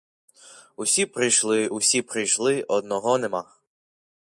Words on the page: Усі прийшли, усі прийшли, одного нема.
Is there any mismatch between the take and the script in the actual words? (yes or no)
no